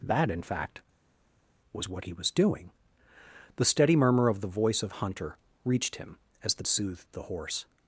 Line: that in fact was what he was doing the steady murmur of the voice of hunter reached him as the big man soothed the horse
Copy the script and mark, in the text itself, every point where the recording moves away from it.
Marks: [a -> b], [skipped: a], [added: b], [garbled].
that in fact was what he was doing the steady murmur of the voice of hunter reached him as the [skipped: big man] soothed the horse